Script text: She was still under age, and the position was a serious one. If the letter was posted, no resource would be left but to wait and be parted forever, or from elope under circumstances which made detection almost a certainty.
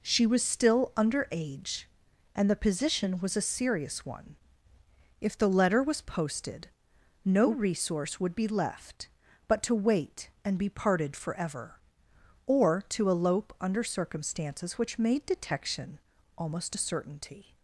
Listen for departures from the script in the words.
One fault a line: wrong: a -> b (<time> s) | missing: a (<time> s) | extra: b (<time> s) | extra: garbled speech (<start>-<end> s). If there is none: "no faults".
wrong: from -> to (12.9 s)